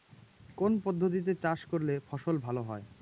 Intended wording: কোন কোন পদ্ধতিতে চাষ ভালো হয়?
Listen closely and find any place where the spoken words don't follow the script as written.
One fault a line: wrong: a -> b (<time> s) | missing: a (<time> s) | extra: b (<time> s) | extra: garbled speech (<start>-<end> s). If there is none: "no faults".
missing: কোন (0.7 s)
extra: করলে ফসল (1.6 s)